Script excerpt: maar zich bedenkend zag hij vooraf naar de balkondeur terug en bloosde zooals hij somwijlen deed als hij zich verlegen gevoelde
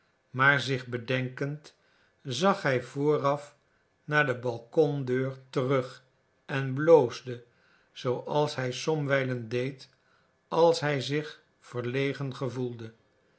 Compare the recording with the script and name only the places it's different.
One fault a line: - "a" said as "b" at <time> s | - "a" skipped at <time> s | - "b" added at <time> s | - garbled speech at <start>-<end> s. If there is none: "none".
none